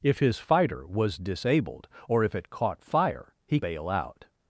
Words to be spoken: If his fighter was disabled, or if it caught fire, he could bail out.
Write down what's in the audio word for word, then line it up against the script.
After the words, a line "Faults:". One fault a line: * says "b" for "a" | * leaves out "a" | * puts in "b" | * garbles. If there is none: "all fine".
If his fighter was disabled, or if it caught fire, he bail out.
Faults:
* leaves out "could"